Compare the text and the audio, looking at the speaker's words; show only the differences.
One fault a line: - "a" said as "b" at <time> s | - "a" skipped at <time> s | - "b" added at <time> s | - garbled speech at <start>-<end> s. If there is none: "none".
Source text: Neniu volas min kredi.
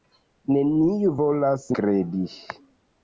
- "min" skipped at 1.7 s